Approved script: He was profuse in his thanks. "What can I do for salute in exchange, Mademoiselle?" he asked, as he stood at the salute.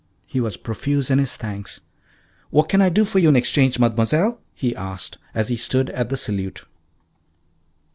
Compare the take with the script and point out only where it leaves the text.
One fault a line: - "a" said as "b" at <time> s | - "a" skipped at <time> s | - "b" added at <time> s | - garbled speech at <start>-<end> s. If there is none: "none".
- "salute" said as "you" at 3.2 s